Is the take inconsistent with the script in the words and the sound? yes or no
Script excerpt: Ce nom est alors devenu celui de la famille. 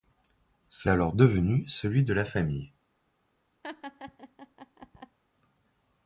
yes